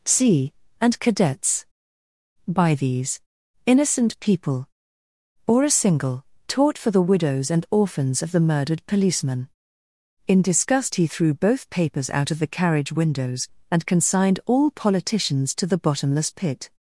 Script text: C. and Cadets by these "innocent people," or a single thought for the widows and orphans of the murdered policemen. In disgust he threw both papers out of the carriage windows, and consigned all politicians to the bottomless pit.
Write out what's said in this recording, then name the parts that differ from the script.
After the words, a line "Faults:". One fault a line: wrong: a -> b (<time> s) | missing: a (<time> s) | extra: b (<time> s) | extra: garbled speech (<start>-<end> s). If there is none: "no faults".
C. and Cadets by these "innocent people," or a single taught for the widows and orphans of the murdered policemen. In disgust he threw both papers out of the carriage windows, and consigned all politicians to the bottomless pit.
Faults:
wrong: thought -> taught (6.5 s)